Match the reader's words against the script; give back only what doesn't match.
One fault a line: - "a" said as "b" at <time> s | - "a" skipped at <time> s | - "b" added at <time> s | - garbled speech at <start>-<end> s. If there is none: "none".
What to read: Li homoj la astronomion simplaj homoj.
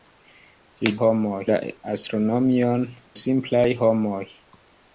none